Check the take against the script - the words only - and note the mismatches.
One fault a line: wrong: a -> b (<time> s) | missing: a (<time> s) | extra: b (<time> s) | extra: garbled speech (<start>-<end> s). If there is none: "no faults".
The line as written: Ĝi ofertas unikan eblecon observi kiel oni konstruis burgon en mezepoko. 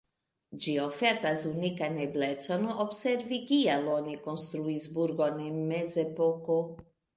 no faults